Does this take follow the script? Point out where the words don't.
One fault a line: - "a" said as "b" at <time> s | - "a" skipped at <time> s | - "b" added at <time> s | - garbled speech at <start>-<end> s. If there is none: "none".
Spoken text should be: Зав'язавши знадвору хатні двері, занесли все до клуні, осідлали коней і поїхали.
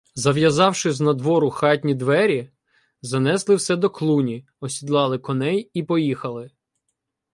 none